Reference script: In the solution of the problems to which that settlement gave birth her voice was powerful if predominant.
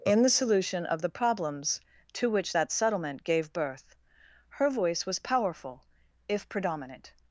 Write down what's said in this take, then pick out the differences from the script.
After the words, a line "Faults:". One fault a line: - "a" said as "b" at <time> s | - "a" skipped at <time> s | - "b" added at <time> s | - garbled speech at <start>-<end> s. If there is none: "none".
In the solution of the problems to which that settlement gave birth her voice was powerful if predominant.
Faults:
none